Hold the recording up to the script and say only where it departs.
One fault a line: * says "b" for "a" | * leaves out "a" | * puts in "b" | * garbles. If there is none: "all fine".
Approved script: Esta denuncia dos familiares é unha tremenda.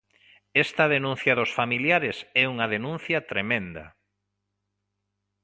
* puts in "denuncia"